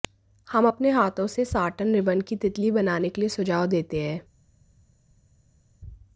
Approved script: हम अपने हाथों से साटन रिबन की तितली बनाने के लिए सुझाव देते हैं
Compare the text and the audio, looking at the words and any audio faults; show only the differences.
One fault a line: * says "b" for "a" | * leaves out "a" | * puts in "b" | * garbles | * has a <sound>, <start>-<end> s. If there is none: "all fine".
all fine